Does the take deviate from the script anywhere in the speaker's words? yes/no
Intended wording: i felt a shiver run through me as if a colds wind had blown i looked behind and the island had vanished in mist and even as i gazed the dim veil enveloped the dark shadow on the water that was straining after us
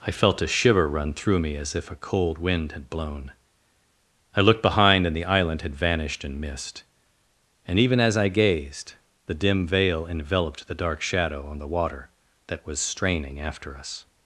yes